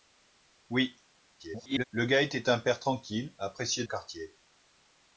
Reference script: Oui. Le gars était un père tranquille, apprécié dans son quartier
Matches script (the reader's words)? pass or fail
fail